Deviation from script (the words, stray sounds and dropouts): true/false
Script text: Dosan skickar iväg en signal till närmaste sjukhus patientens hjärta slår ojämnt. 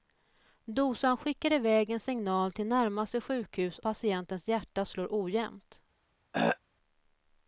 true